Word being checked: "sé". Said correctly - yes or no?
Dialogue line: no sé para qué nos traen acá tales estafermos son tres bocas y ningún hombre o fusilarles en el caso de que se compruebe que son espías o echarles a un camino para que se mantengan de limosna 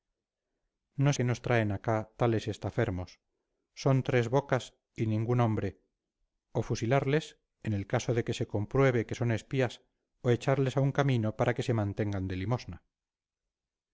no